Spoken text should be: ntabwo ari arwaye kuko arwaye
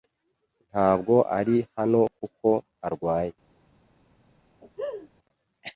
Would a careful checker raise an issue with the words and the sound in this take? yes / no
yes